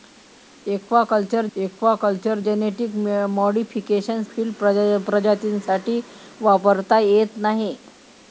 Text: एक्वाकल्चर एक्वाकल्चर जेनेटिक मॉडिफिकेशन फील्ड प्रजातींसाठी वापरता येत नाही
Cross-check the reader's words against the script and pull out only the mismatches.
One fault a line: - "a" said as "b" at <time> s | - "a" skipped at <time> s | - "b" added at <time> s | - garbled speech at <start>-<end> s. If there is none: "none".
none